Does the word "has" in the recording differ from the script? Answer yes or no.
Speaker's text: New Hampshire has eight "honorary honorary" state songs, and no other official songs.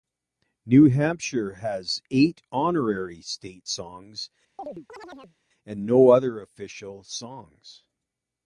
no